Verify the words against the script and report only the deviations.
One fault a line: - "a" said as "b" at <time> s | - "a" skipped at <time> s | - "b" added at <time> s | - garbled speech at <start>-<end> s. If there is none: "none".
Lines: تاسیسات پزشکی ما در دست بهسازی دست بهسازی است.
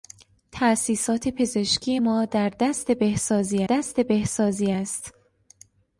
none